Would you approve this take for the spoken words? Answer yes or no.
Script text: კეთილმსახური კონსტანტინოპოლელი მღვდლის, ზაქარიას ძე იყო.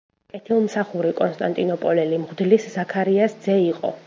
yes